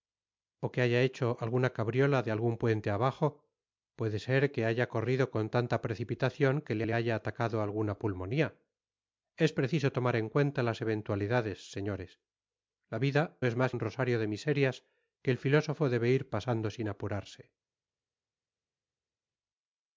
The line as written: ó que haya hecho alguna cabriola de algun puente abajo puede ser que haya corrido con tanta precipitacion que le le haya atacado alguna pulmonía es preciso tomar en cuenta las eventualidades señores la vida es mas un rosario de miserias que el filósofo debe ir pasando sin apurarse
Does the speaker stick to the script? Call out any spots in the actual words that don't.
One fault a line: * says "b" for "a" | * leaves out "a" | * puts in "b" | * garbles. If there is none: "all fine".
all fine